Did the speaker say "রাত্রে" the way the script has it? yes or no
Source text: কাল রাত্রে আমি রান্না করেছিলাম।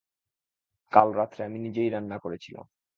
yes